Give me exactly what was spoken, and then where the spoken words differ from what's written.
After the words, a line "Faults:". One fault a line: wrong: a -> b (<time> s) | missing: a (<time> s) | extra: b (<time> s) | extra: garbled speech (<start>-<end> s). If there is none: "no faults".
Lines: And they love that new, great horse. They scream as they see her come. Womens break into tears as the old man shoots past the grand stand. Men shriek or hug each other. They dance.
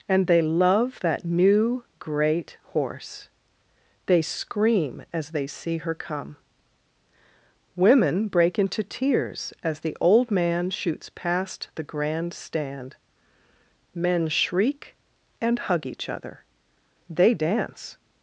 And they love that new, great horse. They scream as they see her come. Women break into tears as the old man shoots past the grand stand. Men shriek and hug each other. They dance.
Faults:
wrong: Womens -> Women (7.8 s)
wrong: or -> and (15.4 s)